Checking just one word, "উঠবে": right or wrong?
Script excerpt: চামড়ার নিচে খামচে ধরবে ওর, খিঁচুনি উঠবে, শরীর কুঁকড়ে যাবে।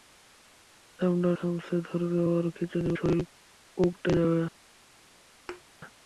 wrong